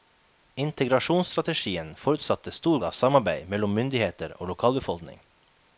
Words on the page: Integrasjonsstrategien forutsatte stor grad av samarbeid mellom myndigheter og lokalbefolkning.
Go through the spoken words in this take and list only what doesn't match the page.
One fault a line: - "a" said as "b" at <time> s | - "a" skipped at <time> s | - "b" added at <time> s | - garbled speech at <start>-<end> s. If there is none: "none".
- "grad" skipped at 2.8 s